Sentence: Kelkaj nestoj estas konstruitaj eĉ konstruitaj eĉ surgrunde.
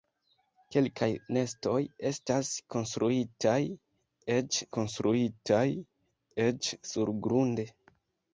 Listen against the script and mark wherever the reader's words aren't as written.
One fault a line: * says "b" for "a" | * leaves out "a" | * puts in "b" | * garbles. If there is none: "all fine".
all fine